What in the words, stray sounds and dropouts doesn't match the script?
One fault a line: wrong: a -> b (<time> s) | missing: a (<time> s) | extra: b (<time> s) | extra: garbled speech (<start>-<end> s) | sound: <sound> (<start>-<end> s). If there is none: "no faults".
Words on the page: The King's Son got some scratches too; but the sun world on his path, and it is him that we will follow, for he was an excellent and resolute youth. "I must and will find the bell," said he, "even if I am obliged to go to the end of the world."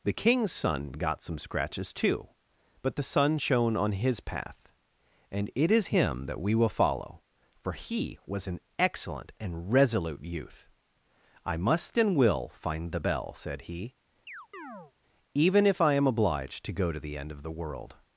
wrong: world -> shone (3.4 s)
sound: chirp (14.3-14.9 s)